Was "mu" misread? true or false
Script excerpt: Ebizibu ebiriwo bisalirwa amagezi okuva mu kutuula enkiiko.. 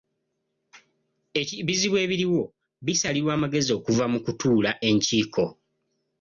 false